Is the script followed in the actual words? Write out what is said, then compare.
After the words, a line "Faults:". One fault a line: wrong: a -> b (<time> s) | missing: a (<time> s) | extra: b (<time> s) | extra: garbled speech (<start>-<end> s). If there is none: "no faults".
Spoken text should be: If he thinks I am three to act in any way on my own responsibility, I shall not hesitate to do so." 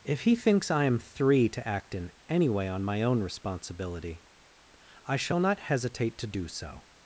If he thinks I am three to act in any way on my own responsibility, I shall not hesitate to do so."
Faults:
no faults